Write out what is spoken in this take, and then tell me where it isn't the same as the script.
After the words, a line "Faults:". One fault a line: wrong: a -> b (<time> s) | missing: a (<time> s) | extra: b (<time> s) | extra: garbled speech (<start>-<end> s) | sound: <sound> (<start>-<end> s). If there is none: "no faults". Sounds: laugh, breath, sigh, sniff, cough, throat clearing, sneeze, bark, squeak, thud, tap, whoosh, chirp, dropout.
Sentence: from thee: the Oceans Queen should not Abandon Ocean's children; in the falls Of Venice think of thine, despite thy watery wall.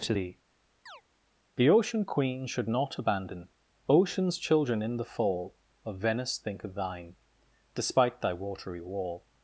to thee: the Ocean Queen should not Abandon Ocean's children; in the fall Of Venice think of thine, despite thy watery wall.
Faults:
wrong: from -> to (0.0 s)
sound: chirp (0.9-1.0 s)
wrong: Oceans -> Ocean (1.7 s)
wrong: falls -> fall (5.0 s)